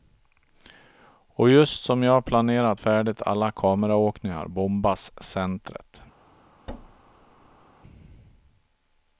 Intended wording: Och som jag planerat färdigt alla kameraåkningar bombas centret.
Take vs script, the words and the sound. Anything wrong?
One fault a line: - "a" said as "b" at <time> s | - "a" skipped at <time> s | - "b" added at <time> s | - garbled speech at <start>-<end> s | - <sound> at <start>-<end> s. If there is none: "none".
- "just" added at 1.5 s
- thud at 6.7-7.7 s